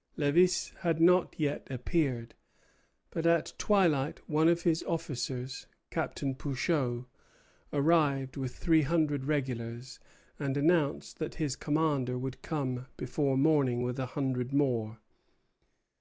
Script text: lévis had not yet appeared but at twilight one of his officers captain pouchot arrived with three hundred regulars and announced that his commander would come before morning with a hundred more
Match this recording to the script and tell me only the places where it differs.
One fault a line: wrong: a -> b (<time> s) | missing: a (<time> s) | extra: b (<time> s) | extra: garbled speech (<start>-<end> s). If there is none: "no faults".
no faults